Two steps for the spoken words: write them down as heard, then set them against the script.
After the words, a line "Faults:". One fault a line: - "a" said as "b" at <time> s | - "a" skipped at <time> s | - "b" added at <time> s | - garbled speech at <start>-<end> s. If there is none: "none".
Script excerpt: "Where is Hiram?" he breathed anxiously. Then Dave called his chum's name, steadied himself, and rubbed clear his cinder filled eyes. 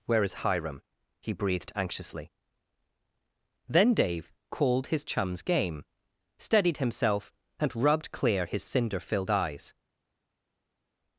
"Where is Hiram?" he breathed anxiously. Then Dave called his chum's game, steadied himself, and rubbed clear his cinder filled eyes.
Faults:
- "name" said as "game" at 5.4 s